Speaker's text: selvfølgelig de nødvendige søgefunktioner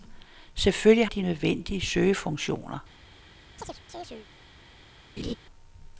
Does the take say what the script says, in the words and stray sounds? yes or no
no